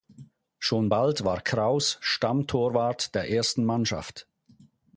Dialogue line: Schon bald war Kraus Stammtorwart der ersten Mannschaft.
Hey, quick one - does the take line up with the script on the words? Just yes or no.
yes